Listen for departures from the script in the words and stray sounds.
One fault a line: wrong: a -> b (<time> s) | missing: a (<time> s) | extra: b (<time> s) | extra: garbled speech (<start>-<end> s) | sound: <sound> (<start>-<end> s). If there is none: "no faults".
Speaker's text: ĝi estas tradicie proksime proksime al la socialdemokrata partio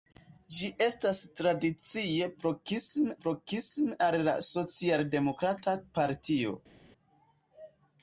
no faults